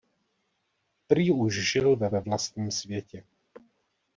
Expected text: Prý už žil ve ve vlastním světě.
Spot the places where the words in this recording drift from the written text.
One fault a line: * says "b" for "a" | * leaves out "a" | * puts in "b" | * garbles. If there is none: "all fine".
all fine